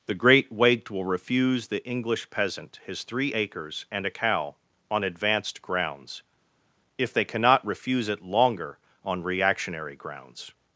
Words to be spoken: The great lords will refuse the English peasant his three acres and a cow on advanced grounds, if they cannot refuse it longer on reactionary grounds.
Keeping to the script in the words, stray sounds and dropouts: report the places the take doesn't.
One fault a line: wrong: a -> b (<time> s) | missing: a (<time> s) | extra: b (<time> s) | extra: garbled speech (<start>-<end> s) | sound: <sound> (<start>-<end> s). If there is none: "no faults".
wrong: lords -> waked (0.5 s)